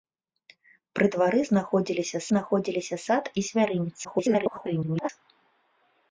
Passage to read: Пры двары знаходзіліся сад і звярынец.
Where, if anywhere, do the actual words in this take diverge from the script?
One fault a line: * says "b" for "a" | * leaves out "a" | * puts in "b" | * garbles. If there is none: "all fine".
* puts in "знаходзіліся"
* garbles